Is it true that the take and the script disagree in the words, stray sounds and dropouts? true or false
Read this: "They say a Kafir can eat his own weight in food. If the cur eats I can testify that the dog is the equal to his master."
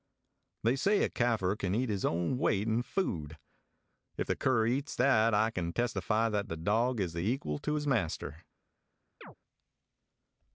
true